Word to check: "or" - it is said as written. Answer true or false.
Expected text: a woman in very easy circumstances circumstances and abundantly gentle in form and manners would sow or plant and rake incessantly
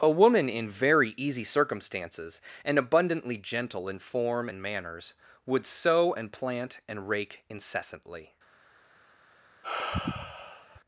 false